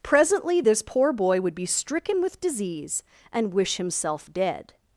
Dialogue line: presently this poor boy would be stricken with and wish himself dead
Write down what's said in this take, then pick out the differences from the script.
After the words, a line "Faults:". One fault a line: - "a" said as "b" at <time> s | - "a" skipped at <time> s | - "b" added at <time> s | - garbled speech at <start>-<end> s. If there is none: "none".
presently this poor boy would be stricken with disease and wish himself dead
Faults:
- "disease" added at 2.4 s